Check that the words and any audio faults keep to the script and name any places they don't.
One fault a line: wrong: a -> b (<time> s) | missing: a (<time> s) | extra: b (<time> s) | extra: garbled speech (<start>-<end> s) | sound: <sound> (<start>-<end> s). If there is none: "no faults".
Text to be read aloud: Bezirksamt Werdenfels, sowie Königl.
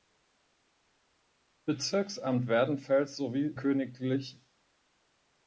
no faults